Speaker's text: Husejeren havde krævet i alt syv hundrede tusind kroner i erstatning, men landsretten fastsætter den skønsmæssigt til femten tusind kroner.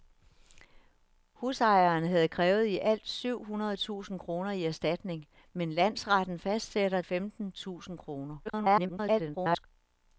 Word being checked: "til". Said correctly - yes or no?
no